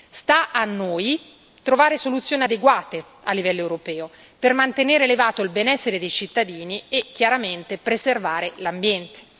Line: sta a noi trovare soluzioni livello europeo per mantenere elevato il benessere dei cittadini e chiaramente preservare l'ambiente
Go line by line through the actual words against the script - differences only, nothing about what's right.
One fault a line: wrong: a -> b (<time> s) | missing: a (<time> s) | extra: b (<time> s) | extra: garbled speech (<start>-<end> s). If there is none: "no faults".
extra: adeguate a (2.4 s)